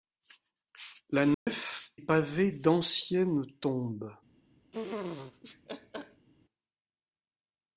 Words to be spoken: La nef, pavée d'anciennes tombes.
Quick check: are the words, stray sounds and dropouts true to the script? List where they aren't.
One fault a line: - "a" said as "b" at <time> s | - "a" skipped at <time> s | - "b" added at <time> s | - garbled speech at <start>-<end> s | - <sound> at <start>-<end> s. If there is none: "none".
- dropout at 1.3-1.5 s
- laugh at 4.7-6.3 s